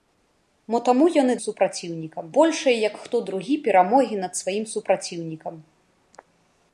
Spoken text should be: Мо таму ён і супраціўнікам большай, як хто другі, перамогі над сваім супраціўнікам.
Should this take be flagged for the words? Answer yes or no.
no